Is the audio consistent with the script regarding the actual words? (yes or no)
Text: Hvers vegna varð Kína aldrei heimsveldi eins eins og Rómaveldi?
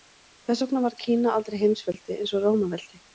no